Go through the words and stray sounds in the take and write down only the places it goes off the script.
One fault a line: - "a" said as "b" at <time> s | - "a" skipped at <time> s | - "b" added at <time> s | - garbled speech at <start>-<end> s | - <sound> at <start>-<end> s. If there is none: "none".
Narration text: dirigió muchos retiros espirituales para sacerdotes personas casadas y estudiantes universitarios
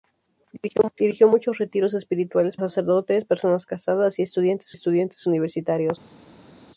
- "para" skipped at 2.6 s
- "estudiantes" added at 4.7 s